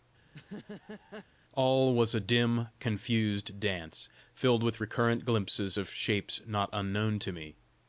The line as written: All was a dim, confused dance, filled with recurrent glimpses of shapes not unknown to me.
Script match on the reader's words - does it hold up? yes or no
yes